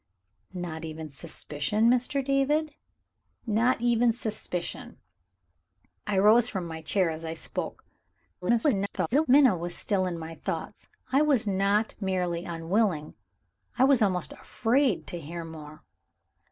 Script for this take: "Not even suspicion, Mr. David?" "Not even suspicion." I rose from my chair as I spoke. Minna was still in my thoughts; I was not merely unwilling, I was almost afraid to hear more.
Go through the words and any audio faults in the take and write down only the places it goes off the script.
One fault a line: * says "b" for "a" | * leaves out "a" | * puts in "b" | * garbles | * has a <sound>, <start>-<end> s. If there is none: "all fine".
* garbles